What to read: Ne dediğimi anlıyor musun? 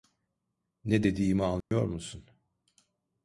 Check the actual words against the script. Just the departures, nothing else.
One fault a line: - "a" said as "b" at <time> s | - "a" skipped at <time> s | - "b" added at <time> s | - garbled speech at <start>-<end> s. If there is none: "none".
none